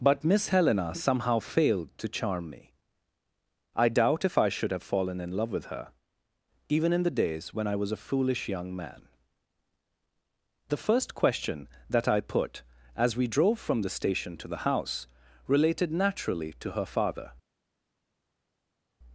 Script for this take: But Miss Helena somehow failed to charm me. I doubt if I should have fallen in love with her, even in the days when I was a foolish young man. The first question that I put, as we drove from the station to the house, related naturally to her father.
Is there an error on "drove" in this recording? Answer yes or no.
no